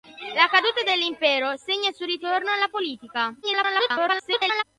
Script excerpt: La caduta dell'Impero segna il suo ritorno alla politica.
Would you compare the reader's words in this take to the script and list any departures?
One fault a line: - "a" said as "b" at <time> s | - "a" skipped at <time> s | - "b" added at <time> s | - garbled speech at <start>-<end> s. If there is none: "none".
- garbled speech at 3.4-4.6 s